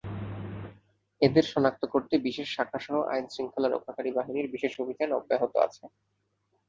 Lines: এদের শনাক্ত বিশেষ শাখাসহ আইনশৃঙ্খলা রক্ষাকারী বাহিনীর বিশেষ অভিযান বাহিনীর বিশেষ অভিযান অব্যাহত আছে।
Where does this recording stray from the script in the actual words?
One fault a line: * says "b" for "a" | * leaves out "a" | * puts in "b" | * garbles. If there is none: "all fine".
* puts in "করতে"
* leaves out "বাহিনীর বিশেষ অভিযান"